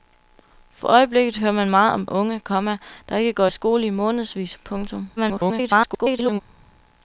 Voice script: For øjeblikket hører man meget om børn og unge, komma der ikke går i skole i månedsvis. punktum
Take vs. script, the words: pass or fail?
fail